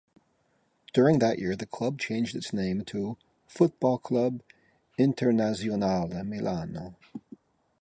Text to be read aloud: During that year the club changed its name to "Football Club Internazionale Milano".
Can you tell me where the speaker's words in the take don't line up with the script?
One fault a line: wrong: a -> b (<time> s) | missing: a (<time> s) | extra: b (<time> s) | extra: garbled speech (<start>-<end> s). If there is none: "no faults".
no faults